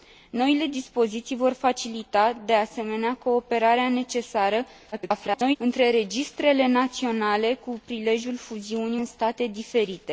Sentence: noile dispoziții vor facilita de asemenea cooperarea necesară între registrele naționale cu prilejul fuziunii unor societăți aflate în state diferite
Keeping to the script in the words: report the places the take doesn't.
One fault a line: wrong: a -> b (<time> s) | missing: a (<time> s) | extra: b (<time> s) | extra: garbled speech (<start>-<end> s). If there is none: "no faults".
extra: garbled speech (4.9-5.6 s)
missing: unor societăți aflate (9.0 s)